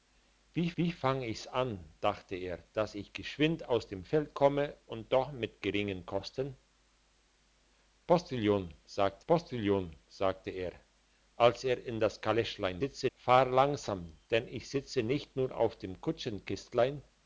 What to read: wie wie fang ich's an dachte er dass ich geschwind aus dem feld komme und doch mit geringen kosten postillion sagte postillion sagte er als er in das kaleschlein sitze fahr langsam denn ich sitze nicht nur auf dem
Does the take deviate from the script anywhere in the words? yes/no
no